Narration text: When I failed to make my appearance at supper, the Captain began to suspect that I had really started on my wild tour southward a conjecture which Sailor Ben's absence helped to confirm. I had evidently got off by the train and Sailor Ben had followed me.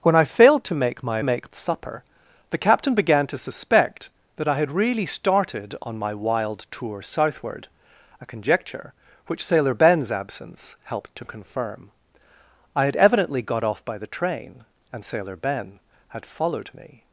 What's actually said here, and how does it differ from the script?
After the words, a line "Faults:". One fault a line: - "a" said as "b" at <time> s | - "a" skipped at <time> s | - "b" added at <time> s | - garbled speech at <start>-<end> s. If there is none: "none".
When I failed to make my make at supper, the Captain began to suspect that I had really started on my wild tour southward a conjecture which Sailor Ben's absence helped to confirm. I had evidently got off by the train and Sailor Ben had followed me.
Faults:
- "appearance" said as "make" at 1.2 s